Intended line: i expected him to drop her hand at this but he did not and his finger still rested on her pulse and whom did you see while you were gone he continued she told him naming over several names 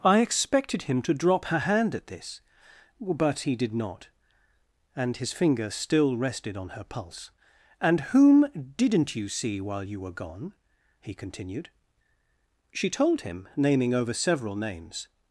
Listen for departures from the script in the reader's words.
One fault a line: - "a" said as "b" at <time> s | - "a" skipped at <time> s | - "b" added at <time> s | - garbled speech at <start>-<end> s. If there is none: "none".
- "did" said as "didn't" at 8.8 s